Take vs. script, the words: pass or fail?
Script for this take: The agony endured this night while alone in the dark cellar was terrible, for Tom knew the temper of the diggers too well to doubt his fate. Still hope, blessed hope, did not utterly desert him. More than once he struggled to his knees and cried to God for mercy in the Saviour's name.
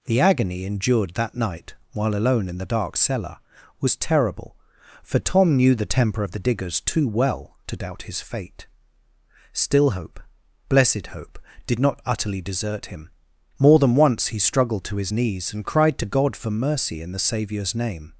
fail